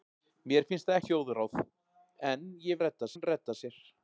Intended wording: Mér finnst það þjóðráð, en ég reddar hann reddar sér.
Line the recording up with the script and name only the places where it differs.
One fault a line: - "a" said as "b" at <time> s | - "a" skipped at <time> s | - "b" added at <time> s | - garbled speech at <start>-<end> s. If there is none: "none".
none